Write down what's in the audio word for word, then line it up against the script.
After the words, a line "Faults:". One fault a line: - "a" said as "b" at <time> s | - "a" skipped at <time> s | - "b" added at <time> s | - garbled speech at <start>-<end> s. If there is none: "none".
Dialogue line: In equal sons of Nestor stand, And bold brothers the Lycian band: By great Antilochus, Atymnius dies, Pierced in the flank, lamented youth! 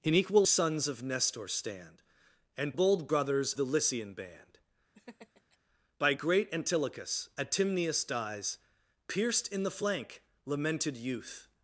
In equal sons of Nestor stand, And bold brothers the Lycian band: By great Antilochus, Atymnius dies, Pierced in the flank, lamented youth!
Faults:
none